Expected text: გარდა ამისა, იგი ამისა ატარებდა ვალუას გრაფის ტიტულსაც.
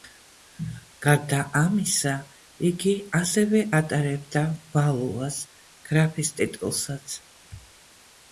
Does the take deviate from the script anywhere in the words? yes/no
yes